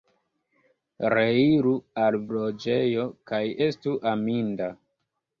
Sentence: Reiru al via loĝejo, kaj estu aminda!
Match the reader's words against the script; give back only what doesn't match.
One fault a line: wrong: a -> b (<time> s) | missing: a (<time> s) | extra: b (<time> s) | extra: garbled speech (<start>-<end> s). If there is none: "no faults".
missing: via (2.2 s)